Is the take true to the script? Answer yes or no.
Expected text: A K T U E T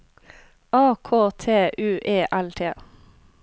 no